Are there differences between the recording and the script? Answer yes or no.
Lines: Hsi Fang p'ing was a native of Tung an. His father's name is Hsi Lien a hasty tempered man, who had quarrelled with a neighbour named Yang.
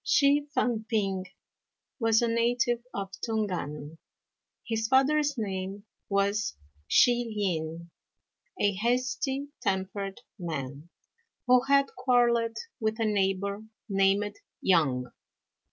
yes